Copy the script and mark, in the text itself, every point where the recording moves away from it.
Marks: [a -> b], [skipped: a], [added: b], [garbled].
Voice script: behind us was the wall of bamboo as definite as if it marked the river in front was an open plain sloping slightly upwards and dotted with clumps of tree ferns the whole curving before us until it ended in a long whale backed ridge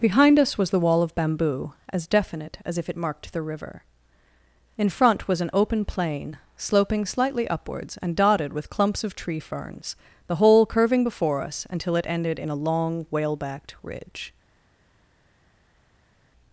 behind us was the wall of bamboo as definite as if it marked the river in front was an open plain sloping slightly upwards and dotted with clumps of tree ferns the whole curving before us until it ended in a long whale backed ridge